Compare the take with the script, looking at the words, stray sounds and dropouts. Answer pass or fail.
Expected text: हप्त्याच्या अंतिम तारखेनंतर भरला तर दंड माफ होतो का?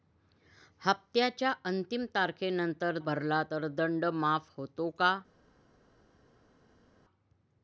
pass